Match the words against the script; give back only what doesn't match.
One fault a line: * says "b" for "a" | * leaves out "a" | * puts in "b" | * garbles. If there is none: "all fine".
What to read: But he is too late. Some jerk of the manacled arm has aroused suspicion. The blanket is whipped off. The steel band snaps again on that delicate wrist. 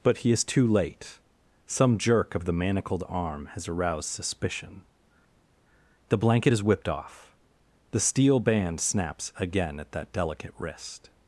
* says "at" for "on"